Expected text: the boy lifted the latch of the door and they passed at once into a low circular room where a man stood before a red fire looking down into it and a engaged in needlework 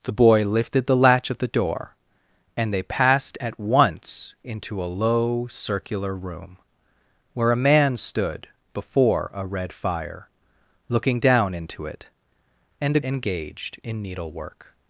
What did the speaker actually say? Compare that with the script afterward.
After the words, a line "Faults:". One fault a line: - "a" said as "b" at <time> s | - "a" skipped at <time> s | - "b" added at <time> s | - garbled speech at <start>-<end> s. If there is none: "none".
the boy lifted the latch of the door and they passed at once into a low circular room where a man stood before a red fire looking down into it and a engaged in needlework
Faults:
none